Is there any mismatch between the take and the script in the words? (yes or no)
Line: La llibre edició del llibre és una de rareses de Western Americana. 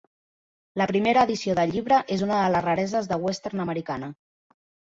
yes